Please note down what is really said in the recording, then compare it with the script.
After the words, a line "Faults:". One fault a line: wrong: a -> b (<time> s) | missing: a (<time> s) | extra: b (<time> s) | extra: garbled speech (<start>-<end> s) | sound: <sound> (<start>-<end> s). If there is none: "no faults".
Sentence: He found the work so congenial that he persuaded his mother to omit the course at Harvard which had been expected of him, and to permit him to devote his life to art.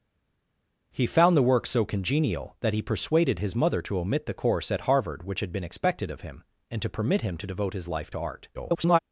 He found the work so congenial that he persuaded his mother to omit the course at Harvard which had been expected of him, and to permit him to devote his life to art. [garbled]
Faults:
extra: garbled speech (8.5-9.0 s)